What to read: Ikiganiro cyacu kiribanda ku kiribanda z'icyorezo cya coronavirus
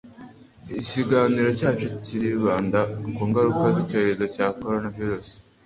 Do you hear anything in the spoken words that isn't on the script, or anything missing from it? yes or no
yes